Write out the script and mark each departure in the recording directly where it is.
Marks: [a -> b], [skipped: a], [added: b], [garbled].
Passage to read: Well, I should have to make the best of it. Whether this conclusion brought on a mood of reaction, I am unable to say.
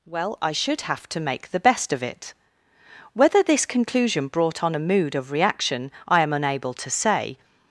Well, I should have to make the best of it. Whether this conclusion brought on a mood of reaction, I am unable to say.